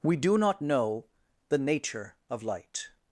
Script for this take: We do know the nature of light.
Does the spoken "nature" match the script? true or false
true